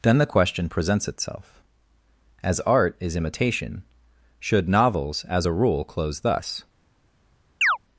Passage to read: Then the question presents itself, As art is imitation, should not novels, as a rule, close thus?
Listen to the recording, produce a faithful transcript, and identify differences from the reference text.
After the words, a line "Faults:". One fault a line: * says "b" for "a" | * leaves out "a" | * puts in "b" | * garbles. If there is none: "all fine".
Then the question presents itself, As art is imitation, should novels, as a rule, close thus?
Faults:
* leaves out "not"